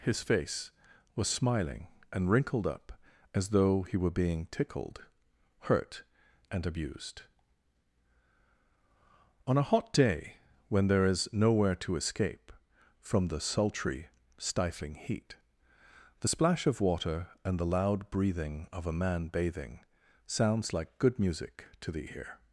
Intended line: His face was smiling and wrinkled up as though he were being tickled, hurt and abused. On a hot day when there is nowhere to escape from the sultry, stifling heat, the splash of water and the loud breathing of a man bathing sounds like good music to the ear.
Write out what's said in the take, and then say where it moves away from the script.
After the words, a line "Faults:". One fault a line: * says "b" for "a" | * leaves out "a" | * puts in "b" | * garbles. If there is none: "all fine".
His face was smiling and wrinkled up as though he were being tickled, hurt and abused. On a hot day when there is nowhere to escape from the sultry, stifling heat, the splash of water and the loud breathing of a man bathing sounds like good music to the ear.
Faults:
all fine